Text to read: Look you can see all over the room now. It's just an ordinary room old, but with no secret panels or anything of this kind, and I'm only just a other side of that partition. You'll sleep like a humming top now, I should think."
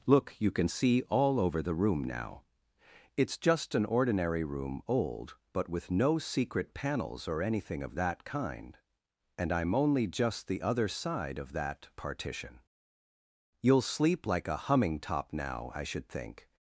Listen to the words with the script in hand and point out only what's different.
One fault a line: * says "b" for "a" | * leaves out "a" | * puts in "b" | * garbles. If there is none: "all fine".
* says "that" for "this"
* says "the" for "a"